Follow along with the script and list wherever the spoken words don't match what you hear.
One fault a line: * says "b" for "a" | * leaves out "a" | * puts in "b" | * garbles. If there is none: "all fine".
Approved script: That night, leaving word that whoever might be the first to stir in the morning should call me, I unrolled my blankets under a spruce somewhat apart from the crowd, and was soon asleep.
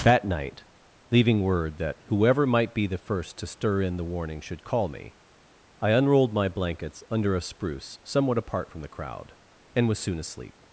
* says "warning" for "morning"